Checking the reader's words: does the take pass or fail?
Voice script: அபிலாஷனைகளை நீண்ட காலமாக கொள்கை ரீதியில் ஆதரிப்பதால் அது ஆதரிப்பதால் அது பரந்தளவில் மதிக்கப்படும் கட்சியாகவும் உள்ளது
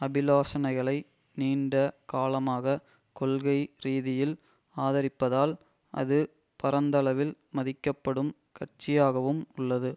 fail